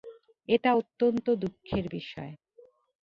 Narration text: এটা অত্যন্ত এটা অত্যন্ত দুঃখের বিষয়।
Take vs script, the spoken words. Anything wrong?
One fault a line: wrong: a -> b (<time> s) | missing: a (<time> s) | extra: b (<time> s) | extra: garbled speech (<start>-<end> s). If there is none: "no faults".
missing: এটা অত্যন্ত (1.3 s)